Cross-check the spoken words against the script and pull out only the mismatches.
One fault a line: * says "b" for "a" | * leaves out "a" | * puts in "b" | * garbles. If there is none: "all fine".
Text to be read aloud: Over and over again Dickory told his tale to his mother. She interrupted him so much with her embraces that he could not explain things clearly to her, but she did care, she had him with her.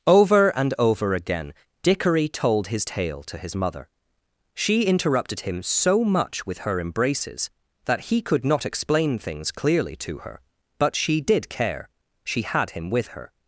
all fine